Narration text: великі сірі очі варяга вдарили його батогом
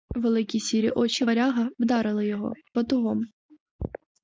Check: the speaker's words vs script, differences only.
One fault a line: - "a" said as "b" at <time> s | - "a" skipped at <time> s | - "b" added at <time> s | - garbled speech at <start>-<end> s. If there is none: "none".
none